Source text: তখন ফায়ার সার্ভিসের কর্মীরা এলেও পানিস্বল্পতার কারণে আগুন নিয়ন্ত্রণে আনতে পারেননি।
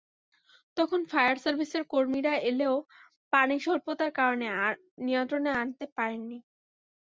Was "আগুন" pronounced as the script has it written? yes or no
no